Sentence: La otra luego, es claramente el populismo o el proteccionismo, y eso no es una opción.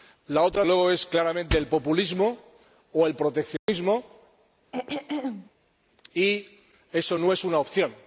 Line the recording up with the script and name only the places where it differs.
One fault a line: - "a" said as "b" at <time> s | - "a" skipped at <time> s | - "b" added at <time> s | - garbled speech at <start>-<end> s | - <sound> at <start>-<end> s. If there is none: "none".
- dropout at 3.6-3.7 s
- throat clearing at 4.7-5.5 s